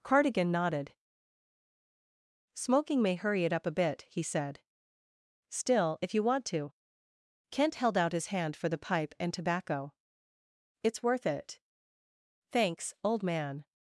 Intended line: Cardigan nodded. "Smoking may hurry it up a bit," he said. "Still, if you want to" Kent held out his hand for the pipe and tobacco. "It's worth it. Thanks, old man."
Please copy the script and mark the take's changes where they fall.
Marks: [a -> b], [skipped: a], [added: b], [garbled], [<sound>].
Cardigan nodded. "Smoking may hurry it up a bit," he said. "Still, if you want to" Kent held out his hand for the pipe and tobacco. "It's worth it. Thanks, old man."